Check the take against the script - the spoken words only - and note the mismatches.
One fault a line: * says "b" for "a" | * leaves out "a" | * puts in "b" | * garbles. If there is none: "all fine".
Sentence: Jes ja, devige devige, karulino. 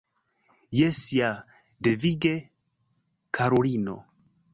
* leaves out "devige"